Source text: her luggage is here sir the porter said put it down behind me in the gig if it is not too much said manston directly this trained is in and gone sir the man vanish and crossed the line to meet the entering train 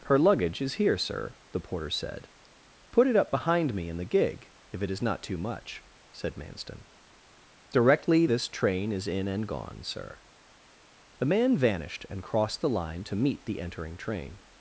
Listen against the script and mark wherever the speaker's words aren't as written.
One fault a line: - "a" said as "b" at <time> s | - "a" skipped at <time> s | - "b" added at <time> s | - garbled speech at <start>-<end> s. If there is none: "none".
- "down" said as "up" at 3.1 s
- "trained" said as "train" at 8.5 s
- "vanish" said as "vanished" at 11.6 s